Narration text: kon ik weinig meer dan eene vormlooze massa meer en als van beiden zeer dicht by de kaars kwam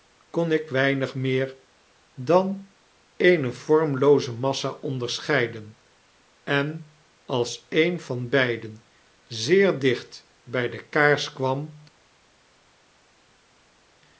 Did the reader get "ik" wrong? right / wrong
right